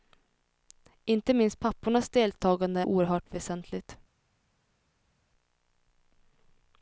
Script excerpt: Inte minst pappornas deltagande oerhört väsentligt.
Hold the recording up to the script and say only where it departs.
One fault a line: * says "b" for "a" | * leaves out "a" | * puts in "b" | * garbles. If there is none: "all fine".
all fine